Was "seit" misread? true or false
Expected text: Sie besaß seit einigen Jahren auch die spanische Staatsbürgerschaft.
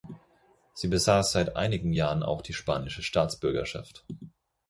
false